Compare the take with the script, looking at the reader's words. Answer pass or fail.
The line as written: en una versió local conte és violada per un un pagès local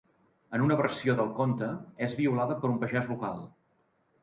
fail